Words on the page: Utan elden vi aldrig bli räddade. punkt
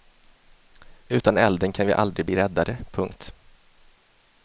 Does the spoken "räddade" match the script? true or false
true